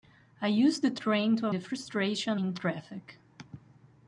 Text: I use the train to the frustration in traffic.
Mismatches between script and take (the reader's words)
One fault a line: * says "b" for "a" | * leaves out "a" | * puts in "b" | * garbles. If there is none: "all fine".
all fine